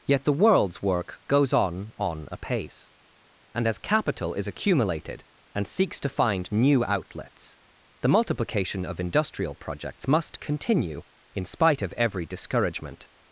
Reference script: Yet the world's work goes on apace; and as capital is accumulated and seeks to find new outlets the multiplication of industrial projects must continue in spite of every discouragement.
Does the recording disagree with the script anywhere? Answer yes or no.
yes